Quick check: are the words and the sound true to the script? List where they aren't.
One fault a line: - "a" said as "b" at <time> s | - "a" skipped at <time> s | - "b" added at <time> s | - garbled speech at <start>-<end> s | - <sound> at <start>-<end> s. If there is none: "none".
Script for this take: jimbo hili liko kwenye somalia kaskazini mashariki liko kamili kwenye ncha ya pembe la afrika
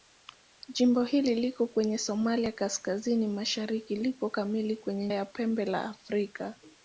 - "ncha" skipped at 5.1 s